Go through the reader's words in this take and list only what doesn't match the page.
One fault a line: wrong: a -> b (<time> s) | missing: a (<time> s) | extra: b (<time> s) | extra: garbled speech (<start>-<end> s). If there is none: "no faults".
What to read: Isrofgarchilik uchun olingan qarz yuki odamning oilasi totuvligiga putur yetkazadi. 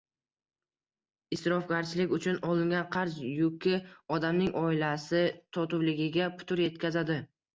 no faults